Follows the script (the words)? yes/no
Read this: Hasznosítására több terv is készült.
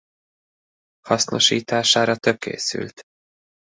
no